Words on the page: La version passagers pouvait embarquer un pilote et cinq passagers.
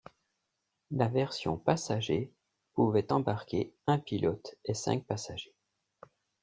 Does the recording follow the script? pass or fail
pass